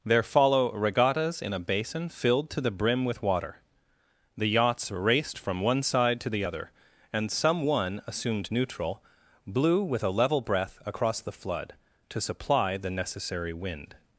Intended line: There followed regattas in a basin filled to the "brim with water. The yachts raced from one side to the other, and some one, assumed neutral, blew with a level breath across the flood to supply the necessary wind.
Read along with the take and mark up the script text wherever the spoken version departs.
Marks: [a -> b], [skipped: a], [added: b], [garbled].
There [followed -> follow] regattas in a basin filled to the "brim with water. The yachts raced from one side to the other, and some one, assumed neutral, blew with a level breath across the flood to supply the necessary wind.